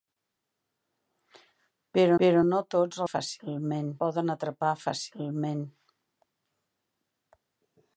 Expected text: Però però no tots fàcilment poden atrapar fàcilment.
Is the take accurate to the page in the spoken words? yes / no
yes